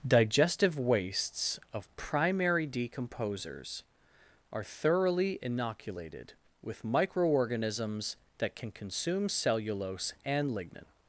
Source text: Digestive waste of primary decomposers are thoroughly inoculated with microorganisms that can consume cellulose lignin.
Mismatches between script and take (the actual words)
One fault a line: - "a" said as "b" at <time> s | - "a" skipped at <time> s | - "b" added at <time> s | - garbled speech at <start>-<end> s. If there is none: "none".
- "waste" said as "wastes" at 0.8 s
- "and" added at 10.2 s